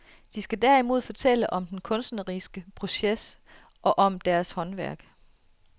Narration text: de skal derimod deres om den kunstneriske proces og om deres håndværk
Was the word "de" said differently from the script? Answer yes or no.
no